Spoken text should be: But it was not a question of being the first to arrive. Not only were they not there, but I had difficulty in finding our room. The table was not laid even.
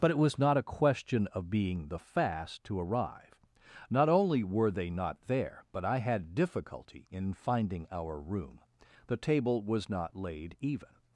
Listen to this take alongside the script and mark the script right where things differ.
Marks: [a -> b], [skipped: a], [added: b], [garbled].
But it was not a question of being the [first -> fast] to arrive. Not only were they not there, but I had difficulty in finding our room. The table was not laid even.